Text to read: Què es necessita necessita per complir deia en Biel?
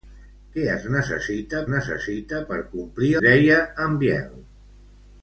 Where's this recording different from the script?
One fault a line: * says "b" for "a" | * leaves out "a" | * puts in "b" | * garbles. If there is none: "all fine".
all fine